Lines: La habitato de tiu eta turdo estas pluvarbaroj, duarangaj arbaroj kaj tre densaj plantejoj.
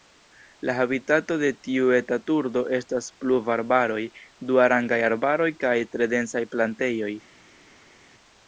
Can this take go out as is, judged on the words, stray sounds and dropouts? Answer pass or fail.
pass